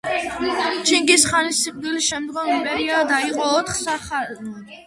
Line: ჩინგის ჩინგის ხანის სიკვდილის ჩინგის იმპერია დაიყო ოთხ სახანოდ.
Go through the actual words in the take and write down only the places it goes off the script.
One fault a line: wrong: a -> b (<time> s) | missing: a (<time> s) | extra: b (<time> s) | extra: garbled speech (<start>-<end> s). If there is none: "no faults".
missing: ჩინგის (1.2 s)
wrong: ჩინგის -> შემდგომ (2.1 s)